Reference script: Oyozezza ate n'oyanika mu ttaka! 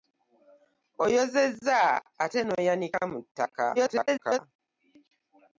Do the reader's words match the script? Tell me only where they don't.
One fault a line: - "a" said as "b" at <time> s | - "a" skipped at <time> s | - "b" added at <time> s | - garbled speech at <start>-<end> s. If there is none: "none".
- garbled speech at 3.7-4.4 s